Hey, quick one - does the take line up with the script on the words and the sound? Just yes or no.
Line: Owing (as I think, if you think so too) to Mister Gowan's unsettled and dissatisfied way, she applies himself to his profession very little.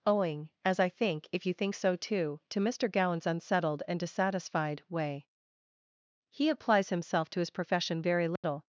no